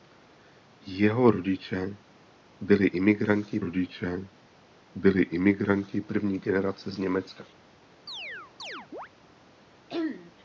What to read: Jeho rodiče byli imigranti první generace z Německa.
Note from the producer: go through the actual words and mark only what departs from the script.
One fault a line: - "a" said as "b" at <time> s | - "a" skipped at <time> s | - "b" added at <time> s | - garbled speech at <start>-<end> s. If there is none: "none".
- "rodiče byli imigranti" added at 3.6 s